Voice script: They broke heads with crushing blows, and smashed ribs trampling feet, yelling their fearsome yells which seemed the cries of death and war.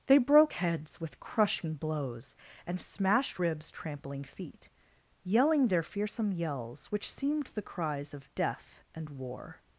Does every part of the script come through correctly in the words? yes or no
yes